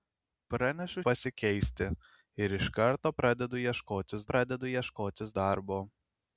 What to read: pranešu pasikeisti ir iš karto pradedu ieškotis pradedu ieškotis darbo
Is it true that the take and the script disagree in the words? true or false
false